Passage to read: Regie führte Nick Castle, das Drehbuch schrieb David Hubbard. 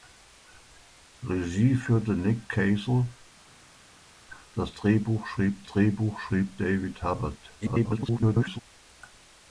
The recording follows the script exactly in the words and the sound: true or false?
false